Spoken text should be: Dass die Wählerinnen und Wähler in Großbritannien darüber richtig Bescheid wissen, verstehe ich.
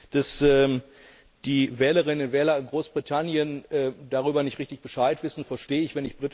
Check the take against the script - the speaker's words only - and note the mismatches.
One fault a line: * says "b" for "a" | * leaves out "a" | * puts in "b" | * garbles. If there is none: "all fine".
* puts in "nicht"